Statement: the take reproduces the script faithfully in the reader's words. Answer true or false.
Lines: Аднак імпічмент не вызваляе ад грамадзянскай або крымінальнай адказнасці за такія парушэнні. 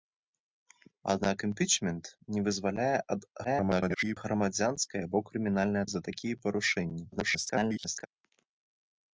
false